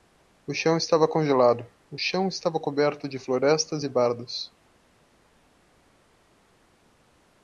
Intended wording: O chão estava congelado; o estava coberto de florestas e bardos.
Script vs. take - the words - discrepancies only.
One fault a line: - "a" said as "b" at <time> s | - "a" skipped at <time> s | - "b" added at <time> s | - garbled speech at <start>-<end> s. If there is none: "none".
- "chão" added at 2.0 s